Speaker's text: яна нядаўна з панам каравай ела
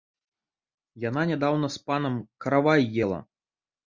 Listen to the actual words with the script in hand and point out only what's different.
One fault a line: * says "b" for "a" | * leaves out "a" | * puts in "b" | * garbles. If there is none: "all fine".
all fine